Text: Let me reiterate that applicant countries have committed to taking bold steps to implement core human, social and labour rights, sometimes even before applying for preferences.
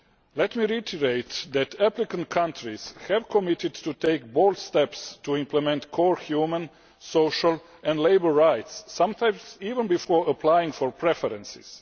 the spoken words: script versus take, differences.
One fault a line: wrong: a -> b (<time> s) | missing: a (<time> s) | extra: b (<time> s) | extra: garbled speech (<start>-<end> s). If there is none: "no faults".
no faults